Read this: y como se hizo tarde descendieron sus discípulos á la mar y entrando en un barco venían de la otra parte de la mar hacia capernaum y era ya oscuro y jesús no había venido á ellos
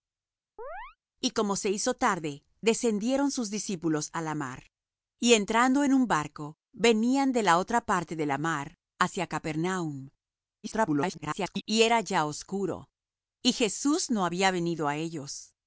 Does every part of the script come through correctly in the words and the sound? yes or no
no